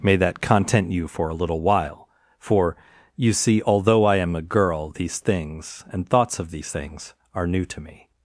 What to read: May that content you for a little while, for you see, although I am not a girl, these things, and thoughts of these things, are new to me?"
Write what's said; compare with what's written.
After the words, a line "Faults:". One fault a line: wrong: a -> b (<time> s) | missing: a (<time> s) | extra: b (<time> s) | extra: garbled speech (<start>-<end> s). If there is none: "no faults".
May that content you for a little while, for you see, although I am a girl, these things, and thoughts of these things, are new to me?"
Faults:
missing: not (4.4 s)